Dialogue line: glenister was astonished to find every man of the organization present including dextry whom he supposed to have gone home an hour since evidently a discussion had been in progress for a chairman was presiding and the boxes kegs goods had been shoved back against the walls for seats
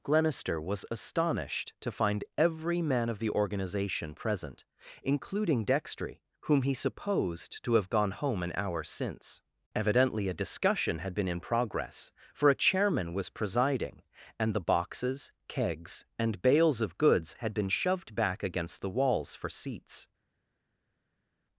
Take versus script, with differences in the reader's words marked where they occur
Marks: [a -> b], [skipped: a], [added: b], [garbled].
glenister was astonished to find every man of the organization present including dextry whom he supposed to have gone home an hour since evidently a discussion had been in progress for a chairman was presiding and the boxes kegs [added: and bales of] goods had been shoved back against the walls for seats